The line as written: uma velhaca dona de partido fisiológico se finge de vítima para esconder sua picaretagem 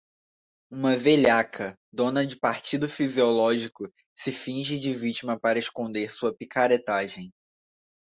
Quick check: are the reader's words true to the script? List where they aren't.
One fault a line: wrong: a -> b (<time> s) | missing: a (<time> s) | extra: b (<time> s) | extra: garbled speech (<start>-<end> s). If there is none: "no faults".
no faults